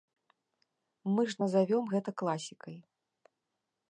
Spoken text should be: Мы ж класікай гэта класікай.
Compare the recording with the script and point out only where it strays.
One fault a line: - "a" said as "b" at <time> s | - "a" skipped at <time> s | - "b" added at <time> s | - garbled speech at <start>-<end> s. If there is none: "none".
- "класікай" said as "назавём" at 1.4 s